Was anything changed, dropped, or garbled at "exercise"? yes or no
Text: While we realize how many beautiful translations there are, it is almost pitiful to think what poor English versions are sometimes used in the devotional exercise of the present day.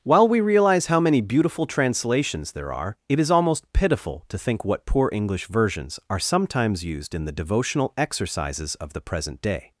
yes